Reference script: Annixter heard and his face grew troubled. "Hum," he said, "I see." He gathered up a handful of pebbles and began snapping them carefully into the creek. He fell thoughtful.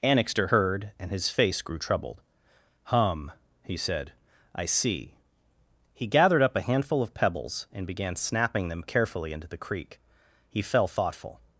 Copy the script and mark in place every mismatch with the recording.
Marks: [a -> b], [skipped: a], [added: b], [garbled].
Annixter heard and his face grew troubled. "Hum," he said, "I see." He gathered up a handful of pebbles and began snapping them carefully into the creek. He fell thoughtful.